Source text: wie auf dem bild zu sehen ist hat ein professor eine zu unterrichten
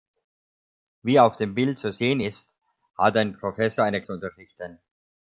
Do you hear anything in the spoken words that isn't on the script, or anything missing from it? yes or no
no